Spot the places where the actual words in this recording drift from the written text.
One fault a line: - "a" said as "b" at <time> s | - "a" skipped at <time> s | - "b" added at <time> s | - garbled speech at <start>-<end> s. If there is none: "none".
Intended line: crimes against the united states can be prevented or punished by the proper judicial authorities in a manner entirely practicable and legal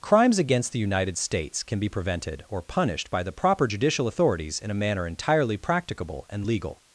none